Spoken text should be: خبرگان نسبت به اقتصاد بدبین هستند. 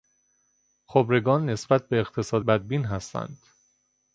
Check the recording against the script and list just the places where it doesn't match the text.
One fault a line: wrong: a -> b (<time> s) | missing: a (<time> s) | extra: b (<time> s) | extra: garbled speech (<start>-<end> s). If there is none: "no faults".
no faults